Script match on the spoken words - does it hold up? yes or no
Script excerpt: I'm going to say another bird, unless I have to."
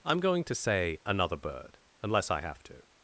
yes